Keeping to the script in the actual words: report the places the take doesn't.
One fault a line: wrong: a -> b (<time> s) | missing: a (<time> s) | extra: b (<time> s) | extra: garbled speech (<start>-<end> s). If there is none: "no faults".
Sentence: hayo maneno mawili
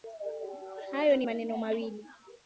extra: ni (1.2 s)